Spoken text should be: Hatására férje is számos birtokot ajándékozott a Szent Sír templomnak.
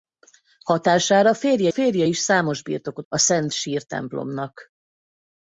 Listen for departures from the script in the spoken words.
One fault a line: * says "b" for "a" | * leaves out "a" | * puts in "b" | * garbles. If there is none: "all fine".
* puts in "férje"
* leaves out "ajándékozott"